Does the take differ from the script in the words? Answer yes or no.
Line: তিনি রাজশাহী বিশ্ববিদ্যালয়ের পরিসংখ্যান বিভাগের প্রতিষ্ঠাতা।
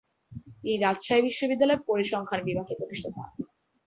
no